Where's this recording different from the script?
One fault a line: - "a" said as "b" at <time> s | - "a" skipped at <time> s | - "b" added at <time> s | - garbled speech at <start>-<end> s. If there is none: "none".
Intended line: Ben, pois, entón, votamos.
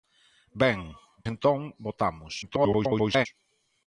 - "pois" skipped at 0.8 s
- garbled speech at 2.4-3.3 s